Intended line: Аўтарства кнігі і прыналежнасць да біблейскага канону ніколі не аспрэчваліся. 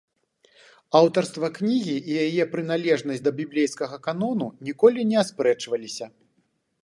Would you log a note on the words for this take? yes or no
yes